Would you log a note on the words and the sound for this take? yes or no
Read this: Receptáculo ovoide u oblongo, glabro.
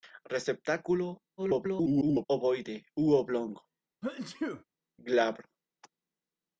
yes